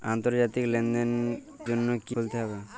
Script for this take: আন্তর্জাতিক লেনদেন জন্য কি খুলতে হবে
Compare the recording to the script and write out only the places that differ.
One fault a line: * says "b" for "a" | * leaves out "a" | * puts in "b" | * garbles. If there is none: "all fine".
all fine